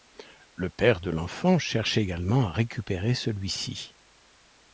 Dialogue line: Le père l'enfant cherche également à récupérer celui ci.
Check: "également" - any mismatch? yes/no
no